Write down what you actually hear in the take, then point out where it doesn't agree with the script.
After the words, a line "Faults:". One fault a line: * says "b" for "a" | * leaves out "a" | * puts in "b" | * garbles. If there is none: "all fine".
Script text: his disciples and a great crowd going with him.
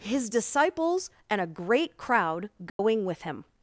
his disciples and a great crowd going with him.
Faults:
all fine